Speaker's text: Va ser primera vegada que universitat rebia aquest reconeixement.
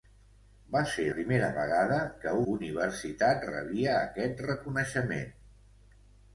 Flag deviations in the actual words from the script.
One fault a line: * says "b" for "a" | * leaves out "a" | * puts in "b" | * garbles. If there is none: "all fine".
all fine